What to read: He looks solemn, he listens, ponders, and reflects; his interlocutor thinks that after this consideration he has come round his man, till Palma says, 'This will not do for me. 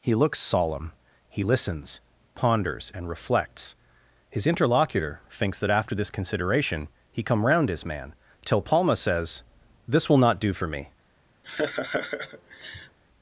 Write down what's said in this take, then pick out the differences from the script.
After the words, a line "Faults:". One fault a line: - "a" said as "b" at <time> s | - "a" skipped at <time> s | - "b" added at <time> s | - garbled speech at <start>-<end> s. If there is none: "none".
He looks solemn, he listens, ponders, and reflects; his interlocutor thinks that after this consideration he come round his man, till Palma says, 'This will not do for me.
Faults:
- "has" skipped at 7.2 s